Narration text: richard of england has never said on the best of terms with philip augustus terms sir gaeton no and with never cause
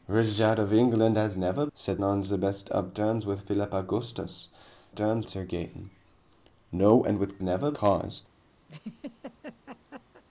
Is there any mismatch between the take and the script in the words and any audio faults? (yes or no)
yes